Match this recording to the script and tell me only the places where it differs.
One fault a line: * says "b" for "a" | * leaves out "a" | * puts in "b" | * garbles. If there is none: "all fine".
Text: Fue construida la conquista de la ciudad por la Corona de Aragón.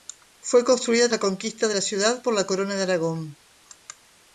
all fine